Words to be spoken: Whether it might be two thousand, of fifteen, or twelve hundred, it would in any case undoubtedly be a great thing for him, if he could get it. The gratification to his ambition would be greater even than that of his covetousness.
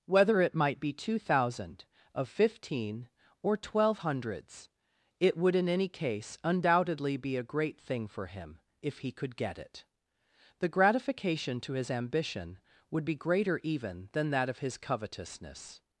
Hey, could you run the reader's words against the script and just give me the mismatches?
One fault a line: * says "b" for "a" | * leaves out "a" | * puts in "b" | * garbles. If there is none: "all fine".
* says "hundreds" for "hundred"